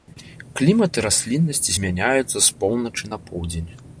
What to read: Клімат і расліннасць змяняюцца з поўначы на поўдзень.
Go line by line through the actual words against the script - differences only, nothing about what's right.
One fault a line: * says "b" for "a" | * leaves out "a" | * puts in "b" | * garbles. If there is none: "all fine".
all fine